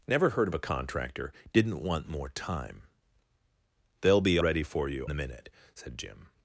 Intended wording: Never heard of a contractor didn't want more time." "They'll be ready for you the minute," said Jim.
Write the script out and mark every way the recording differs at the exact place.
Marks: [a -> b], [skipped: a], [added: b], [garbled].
Never heard of a contractor didn't want more time." "They'll be ready for you the minute," said Jim.